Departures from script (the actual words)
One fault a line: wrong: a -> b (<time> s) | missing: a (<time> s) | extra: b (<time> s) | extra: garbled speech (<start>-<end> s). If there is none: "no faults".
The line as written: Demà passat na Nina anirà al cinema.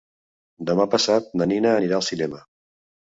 no faults